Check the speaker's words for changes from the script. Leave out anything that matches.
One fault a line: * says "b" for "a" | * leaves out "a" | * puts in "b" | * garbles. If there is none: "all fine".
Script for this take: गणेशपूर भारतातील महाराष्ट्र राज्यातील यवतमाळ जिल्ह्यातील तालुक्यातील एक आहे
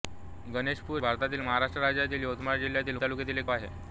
all fine